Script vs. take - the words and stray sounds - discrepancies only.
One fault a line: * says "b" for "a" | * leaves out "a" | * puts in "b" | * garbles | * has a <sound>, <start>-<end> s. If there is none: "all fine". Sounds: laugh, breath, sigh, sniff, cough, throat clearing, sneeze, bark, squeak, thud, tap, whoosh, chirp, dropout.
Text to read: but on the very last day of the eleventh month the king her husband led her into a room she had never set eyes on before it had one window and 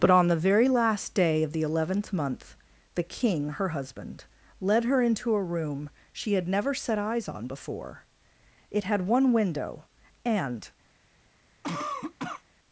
* has a cough, 11.6-12.4 s